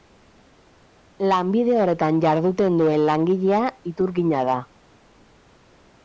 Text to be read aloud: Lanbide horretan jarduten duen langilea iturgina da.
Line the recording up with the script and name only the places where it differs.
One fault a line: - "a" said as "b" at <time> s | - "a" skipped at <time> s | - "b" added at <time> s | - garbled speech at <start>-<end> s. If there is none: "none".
none